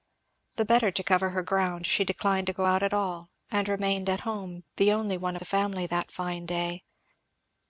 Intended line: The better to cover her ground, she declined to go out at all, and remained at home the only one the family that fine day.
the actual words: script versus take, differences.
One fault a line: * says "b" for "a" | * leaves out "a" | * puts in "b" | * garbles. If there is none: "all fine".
all fine